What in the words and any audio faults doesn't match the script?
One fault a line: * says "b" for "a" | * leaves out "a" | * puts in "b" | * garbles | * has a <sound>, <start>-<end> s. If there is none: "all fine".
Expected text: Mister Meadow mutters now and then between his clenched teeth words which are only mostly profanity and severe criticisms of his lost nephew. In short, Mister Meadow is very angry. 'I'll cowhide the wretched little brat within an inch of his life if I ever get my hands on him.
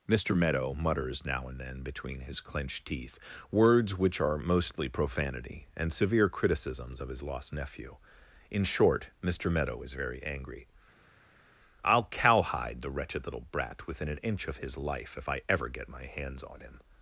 * leaves out "only"